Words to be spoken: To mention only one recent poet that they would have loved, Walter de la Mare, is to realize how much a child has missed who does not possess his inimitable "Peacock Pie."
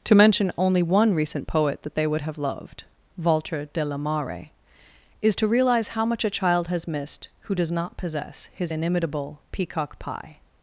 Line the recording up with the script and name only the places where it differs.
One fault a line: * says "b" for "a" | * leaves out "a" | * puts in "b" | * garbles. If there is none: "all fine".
all fine